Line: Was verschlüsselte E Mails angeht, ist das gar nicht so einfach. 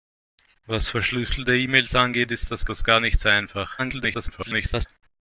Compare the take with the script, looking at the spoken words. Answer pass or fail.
fail